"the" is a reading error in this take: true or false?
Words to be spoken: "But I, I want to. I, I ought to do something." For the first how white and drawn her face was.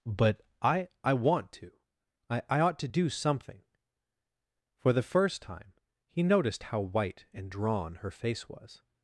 false